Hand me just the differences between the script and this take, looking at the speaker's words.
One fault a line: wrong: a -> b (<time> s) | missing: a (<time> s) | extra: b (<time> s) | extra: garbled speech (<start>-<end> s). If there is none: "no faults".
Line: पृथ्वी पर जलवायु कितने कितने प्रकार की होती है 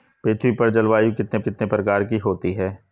no faults